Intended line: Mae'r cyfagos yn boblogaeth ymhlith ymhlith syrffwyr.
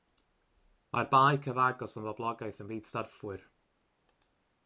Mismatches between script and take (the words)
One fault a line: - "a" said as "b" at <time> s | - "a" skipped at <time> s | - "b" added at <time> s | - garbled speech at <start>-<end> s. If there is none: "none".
- "bae" added at 1.1 s
- "ymhlith" skipped at 2.9 s